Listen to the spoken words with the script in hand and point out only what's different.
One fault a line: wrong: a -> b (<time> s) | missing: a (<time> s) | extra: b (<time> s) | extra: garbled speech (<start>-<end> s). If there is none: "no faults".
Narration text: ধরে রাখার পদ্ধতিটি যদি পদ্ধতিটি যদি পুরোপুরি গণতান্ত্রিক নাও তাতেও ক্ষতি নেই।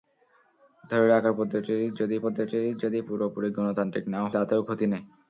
no faults